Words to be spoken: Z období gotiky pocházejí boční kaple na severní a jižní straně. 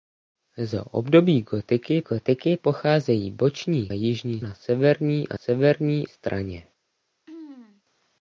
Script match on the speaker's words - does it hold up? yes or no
no